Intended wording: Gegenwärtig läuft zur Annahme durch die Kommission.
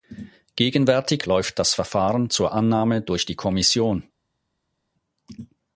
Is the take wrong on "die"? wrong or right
right